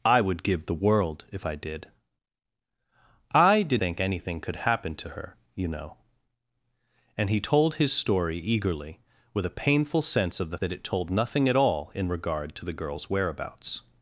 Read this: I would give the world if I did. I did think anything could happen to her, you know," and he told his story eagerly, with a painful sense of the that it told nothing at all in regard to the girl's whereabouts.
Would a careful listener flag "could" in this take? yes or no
no